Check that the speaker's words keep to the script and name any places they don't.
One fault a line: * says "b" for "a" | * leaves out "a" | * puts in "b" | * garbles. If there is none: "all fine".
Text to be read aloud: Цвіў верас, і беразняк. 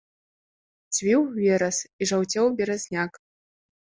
* puts in "жаўцеў"